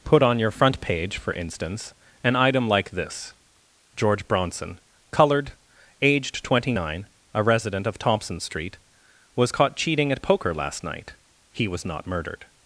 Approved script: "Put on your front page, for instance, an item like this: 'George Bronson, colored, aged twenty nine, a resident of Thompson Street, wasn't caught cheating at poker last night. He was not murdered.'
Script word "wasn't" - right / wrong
wrong